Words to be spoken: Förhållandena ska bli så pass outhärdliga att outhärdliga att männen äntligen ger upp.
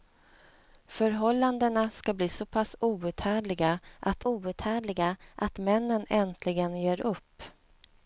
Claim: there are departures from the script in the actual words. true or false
false